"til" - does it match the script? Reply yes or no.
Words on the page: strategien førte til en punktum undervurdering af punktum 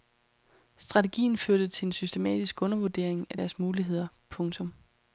yes